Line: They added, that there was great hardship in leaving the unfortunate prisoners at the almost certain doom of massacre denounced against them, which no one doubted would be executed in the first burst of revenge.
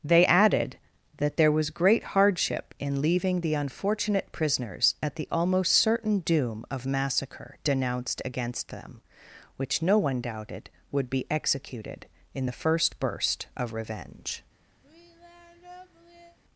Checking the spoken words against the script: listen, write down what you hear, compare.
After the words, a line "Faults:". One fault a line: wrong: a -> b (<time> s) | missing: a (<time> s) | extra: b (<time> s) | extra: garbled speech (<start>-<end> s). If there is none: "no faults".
They added, that there was great hardship in leaving the unfortunate prisoners at the almost certain doom of massacre denounced against them, which no one doubted would be executed in the first burst of revenge.
Faults:
no faults